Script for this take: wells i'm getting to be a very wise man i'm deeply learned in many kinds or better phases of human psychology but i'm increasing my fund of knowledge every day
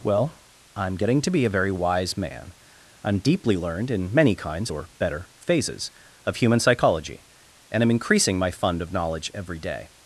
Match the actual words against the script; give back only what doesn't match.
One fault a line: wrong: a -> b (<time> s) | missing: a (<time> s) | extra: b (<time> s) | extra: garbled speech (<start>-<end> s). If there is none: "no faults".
wrong: wells -> well (0.0 s)
wrong: but -> and (7.7 s)